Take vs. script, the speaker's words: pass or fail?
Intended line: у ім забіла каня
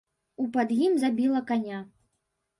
fail